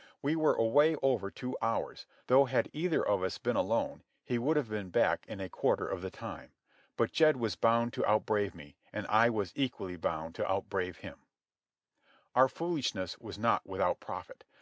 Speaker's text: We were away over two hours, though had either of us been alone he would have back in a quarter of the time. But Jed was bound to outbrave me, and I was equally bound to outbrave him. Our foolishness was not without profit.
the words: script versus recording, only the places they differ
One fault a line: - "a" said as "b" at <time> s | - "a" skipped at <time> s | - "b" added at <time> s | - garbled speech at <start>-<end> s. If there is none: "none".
- "been" added at 4.7 s